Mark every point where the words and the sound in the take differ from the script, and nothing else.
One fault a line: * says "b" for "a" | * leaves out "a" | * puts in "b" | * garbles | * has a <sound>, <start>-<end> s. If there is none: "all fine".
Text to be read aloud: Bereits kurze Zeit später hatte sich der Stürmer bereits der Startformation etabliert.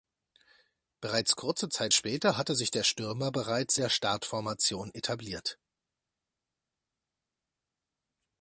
all fine